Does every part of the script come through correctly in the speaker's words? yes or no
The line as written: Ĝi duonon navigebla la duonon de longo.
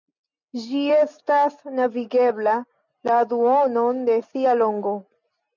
no